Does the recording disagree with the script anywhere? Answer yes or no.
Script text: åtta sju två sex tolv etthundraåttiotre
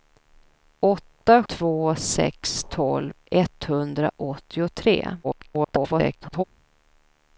yes